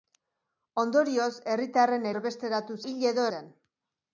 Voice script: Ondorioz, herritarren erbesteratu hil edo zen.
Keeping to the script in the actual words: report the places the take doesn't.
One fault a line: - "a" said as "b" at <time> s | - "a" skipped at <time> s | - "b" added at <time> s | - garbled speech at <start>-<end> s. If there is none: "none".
none